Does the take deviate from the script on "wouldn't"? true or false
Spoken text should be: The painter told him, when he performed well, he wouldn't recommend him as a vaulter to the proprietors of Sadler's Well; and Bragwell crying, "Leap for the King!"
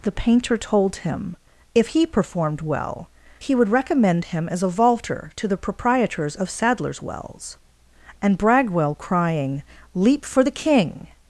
true